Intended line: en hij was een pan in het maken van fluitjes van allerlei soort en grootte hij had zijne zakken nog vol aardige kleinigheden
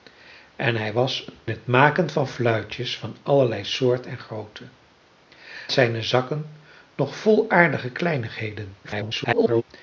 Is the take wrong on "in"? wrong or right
wrong